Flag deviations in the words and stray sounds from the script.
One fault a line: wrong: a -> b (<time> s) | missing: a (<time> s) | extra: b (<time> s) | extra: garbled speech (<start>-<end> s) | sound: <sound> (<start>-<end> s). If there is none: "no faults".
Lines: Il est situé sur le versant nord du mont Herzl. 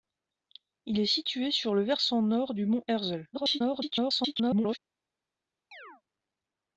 extra: garbled speech (3.3-4.8 s)
sound: chirp (5.7-6.0 s)